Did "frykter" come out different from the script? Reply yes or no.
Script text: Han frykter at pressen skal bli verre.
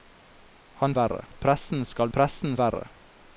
yes